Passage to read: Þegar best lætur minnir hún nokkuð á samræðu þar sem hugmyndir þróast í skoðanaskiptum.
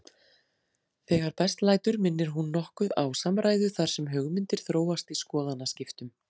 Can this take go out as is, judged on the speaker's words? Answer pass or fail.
pass